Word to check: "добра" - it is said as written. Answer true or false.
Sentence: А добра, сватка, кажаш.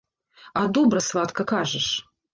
true